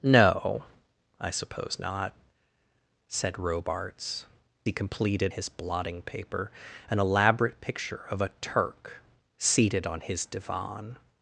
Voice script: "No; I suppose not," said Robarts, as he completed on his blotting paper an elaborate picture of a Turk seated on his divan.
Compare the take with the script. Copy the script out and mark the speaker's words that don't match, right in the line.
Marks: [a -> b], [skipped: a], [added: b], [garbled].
"No; I suppose not," said Robarts, [skipped: as] he completed [skipped: on] his blotting paper an elaborate picture of a Turk seated on his divan.